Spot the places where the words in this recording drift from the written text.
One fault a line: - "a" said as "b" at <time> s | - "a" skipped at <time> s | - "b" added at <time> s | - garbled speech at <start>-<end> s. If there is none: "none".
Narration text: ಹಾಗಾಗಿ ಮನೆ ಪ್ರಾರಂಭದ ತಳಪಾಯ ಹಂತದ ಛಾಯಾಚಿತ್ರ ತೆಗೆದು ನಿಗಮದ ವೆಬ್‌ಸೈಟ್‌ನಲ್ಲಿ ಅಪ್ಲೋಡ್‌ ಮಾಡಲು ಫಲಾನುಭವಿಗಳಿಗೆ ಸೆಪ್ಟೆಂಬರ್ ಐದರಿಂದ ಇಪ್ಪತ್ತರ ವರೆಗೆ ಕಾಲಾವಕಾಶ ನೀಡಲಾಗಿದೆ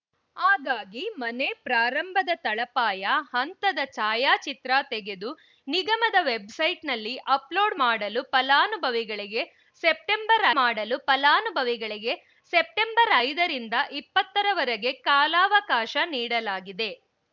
- "ಮಾಡಲು ಫಲಾನುಭವಿಗಳಿಗೆ ಸೆಪ್ಟೆಂಬರ್" added at 10.6 s